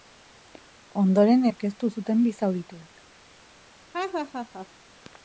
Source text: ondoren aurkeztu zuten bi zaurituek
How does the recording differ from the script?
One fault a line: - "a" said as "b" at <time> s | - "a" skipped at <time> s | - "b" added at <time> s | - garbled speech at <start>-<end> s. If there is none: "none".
none